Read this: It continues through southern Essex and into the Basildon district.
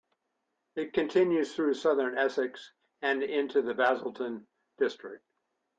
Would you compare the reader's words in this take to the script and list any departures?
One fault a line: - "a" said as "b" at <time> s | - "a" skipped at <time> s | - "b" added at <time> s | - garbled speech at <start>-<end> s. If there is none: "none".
none